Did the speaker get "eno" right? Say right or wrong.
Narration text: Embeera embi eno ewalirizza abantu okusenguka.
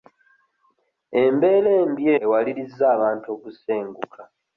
wrong